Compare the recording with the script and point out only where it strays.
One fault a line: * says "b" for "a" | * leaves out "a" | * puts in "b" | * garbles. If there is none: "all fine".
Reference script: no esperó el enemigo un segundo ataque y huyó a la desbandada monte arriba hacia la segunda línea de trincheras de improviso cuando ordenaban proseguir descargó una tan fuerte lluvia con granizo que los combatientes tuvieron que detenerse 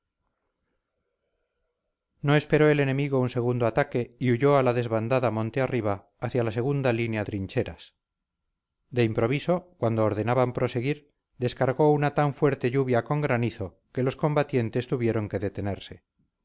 * leaves out "de"